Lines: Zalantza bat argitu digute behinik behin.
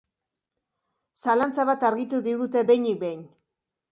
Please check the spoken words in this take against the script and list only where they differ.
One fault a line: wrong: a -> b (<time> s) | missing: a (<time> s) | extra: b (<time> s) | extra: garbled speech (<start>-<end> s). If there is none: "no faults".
no faults